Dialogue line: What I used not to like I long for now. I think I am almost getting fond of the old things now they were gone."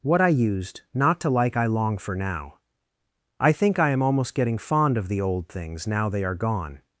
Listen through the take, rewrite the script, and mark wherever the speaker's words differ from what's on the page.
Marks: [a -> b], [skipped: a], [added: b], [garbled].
What I used not to like I long for now. I think I am almost getting fond of the old things now they [were -> are] gone."